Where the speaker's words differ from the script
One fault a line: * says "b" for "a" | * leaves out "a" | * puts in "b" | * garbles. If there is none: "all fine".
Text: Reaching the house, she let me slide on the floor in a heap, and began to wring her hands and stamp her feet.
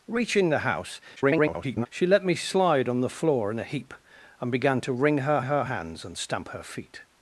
* garbles
* puts in "her"